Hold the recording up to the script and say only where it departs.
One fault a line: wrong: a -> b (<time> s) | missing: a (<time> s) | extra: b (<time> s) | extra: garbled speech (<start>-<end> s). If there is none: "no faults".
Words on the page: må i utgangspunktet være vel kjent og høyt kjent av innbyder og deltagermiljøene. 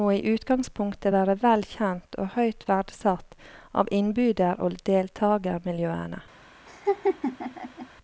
wrong: kjent -> verdsatt (2.7 s)